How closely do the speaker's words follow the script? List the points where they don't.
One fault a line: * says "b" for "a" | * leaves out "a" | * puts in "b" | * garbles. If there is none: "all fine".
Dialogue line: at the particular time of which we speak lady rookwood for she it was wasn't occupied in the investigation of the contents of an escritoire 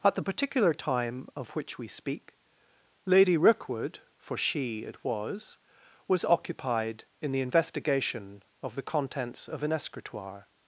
* says "was" for "wasn't"